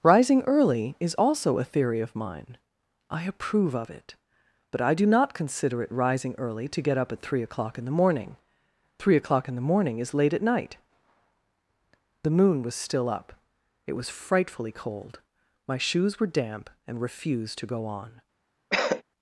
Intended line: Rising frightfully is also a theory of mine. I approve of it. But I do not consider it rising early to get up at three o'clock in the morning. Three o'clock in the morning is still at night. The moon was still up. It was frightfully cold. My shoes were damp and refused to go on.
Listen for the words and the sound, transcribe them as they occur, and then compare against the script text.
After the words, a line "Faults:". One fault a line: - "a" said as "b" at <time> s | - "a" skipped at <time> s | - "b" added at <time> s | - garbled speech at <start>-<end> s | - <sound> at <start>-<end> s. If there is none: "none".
Rising early is also a theory of mine. I approve of it. But I do not consider it rising early to get up at three o'clock in the morning. Three o'clock in the morning is late at night. The moon was still up. It was frightfully cold. My shoes were damp and refused to go on.
Faults:
- "frightfully" said as "early" at 0.5 s
- "still" said as "late" at 10.1 s
- cough at 18.7-19.0 s